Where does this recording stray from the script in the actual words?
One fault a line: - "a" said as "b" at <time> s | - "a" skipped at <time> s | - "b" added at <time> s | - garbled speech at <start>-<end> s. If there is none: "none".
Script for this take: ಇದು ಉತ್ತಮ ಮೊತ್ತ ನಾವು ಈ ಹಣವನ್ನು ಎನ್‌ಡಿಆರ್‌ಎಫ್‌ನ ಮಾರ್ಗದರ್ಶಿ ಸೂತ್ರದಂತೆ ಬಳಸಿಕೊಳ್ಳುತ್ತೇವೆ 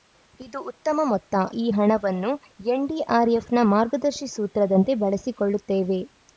- "ನಾವು" skipped at 1.4 s